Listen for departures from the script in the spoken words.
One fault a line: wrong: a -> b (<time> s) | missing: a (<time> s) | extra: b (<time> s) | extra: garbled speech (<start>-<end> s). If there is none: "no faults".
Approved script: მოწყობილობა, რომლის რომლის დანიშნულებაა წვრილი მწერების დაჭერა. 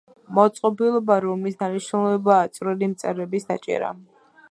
missing: რომლის (1.6 s)